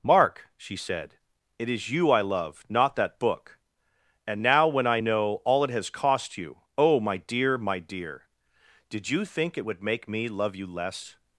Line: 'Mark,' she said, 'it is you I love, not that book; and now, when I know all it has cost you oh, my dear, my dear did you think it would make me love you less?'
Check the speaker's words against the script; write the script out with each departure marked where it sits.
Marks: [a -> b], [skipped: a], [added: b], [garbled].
'Mark,' she said, 'it is you I love, not that book; and now, when I know all it has cost you oh, my dear, my dear did you think it would make me love you less?'